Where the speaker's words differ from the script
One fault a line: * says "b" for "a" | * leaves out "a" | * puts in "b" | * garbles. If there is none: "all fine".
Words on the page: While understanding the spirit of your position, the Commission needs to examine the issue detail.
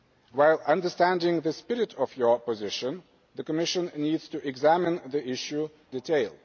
all fine